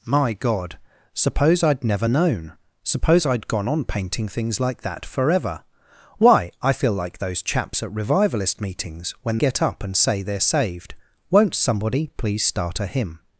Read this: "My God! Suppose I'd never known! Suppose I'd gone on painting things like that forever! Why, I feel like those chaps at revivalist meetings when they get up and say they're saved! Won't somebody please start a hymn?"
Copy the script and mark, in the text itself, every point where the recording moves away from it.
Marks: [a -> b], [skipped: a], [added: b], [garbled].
"My God! Suppose I'd never known! Suppose I'd gone on painting things like that forever! Why, I feel like those chaps at revivalist meetings when [skipped: they] get up and say they're saved! Won't somebody please start a hymn?"